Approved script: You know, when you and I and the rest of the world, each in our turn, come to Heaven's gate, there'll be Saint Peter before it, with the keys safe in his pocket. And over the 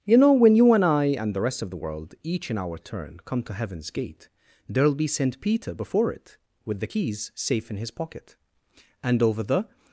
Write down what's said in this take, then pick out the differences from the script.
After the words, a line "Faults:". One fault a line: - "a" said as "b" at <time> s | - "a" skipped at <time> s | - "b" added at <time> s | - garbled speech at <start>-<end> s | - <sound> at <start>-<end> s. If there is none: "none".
You know, when you and I and the rest of the world, each in our turn, come to Heaven's gate, there'll be Saint Peter before it, with the keys safe in his pocket. And over the
Faults:
none